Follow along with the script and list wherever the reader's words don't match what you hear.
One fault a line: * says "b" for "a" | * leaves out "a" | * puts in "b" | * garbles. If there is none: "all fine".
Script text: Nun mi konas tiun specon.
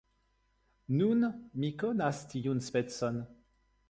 all fine